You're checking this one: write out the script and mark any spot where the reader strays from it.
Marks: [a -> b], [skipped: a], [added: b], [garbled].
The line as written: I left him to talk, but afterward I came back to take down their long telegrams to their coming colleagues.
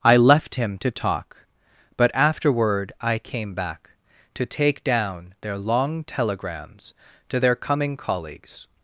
I left him to talk, but afterward I came back to take down their long telegrams to their coming colleagues.